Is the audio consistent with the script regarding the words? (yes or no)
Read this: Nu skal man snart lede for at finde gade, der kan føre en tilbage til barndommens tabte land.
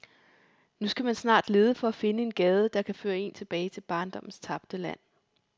no